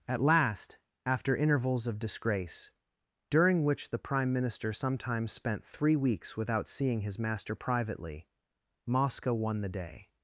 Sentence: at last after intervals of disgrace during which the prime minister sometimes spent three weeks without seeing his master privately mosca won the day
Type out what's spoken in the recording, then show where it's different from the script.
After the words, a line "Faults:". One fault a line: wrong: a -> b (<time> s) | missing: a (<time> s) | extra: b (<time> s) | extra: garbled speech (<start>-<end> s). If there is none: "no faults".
at last after intervals of disgrace during which the prime minister sometimes spent three weeks without seeing his master privately mosca won the day
Faults:
no faults